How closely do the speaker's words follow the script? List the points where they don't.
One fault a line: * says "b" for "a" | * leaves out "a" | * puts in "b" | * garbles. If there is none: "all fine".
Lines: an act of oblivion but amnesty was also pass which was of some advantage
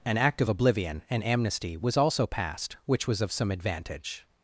* says "and" for "but"
* says "passed" for "pass"